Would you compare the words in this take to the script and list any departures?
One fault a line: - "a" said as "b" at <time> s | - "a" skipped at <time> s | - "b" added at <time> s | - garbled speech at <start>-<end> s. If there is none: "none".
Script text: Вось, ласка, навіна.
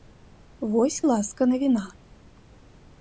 none